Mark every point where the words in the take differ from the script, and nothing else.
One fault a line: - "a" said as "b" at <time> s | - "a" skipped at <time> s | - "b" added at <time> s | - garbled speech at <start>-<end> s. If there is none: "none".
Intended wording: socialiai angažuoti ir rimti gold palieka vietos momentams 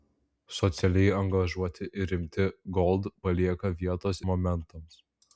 none